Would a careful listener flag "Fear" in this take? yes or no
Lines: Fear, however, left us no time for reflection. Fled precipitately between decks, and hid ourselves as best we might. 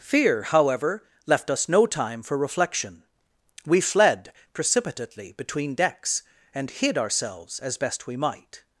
no